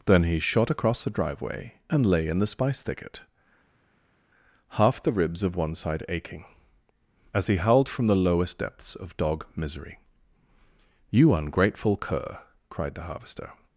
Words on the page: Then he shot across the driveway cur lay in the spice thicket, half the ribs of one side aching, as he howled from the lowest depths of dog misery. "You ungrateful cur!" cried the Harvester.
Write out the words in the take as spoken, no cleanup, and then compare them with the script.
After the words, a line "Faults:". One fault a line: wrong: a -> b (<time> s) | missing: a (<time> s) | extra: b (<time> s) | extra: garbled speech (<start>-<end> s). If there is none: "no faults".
Then he shot across the driveway and lay in the spice thicket, half the ribs of one side aching, as he howled from the lowest depths of dog misery. "You ungrateful cur!" cried the Harvester.
Faults:
wrong: cur -> and (1.9 s)